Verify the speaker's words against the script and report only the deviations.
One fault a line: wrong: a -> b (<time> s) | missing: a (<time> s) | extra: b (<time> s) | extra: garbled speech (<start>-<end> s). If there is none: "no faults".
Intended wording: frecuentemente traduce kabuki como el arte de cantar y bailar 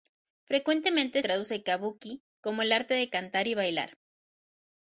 no faults